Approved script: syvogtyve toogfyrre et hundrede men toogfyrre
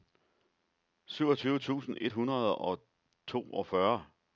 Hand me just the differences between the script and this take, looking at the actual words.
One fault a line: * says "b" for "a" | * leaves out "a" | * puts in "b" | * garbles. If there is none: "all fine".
* says "tusind" for "toogfyrre"
* says "og" for "men"